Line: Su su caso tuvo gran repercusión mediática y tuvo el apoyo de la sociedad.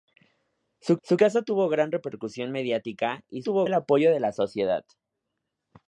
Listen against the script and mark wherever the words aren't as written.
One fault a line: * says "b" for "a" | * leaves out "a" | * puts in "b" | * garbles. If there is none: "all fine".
all fine